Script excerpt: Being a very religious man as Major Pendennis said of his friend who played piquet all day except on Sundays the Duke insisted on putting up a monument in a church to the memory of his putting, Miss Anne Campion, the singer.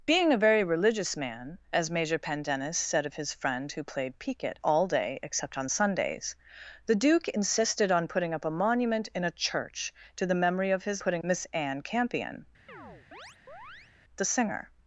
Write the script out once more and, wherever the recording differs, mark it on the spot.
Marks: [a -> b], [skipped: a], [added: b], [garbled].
Being a very religious man as Major Pendennis said of his friend who played piquet all day except on Sundays the Duke insisted on putting up a monument in a church to the memory of his putting, Miss Anne Campion, the singer.